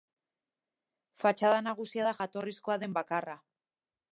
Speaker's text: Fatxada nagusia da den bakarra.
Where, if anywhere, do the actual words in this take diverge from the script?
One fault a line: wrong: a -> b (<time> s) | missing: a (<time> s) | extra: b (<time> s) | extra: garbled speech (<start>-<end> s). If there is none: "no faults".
extra: jatorrizkoa (2.2 s)